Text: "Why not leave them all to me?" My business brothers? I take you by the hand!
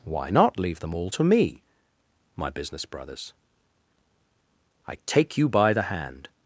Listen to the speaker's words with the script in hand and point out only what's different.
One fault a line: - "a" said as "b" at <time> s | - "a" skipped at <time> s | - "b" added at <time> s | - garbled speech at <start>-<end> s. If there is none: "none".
none